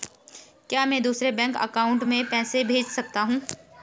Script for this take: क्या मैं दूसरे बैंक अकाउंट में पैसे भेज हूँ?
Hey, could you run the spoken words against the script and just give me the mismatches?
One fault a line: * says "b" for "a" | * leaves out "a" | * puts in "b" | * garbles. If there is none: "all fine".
* puts in "सकता"